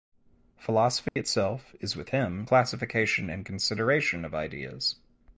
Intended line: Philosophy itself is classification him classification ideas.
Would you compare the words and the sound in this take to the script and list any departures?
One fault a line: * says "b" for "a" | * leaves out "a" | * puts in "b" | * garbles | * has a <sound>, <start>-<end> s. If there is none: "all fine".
* has a dropout, 1.1-1.2 s
* says "with" for "classification"
* puts in "and consideration of"